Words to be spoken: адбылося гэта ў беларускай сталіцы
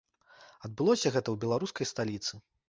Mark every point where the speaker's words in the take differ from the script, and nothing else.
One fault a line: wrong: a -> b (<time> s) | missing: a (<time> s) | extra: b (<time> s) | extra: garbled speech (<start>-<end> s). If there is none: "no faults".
no faults